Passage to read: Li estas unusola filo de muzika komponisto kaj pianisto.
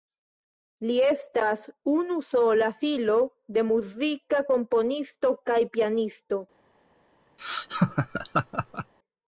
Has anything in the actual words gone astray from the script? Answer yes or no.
no